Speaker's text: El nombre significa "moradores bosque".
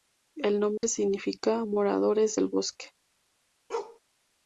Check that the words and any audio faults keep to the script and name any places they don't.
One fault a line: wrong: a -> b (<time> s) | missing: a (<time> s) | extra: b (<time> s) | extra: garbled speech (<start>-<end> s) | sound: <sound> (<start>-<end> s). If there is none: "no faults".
sound: dropout (0.8-0.8 s)
extra: del (2.3 s)
sound: bark (3.7-4.0 s)